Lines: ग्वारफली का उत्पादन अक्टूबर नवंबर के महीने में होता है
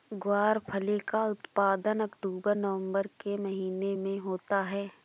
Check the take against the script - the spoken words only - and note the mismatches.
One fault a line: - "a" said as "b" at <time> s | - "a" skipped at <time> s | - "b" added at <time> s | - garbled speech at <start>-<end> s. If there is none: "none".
none